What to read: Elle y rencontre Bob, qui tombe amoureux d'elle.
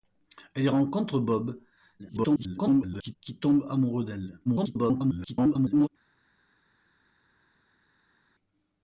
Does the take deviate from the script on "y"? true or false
false